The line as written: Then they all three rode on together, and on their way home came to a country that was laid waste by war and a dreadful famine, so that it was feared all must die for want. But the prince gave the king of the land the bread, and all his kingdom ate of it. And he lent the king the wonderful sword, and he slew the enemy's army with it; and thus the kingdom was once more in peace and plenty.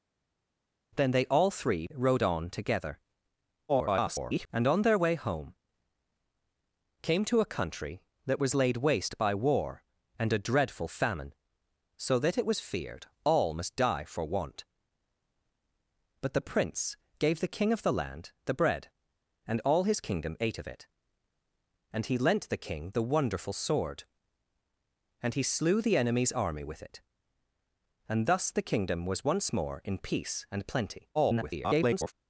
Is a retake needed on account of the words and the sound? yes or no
yes